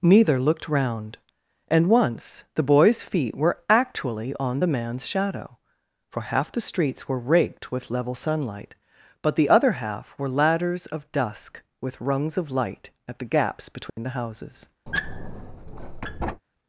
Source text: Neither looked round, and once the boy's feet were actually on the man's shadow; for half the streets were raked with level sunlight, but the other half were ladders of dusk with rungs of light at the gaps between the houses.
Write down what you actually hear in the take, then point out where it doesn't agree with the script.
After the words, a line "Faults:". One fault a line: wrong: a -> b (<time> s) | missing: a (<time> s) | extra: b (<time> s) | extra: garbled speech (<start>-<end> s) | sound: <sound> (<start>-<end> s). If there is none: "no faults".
Neither looked round, and once the boy's feet were actually on the man's shadow; for half the streets were raked with level sunlight, but the other half were ladders of dusk with rungs of light at the gaps between the houses.
Faults:
sound: dropout (13.9-14.0 s)
sound: squeak (14.9-16.4 s)